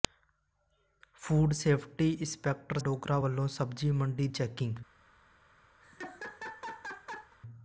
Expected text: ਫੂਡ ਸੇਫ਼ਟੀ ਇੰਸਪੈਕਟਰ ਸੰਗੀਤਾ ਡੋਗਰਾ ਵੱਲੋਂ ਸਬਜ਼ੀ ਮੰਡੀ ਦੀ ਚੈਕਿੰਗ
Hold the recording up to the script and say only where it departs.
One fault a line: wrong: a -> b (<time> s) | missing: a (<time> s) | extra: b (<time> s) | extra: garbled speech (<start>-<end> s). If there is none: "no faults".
missing: ਸੰਗੀਤਾ (2.8 s)
missing: ਦੀ (4.3 s)